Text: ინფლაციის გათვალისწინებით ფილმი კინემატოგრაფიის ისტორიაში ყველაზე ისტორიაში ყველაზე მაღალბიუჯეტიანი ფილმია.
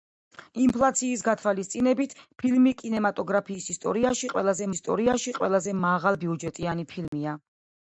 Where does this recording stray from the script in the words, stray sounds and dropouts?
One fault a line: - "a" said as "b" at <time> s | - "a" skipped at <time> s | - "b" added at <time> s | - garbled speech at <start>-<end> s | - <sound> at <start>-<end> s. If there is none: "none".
- dropout at 7.1-7.1 s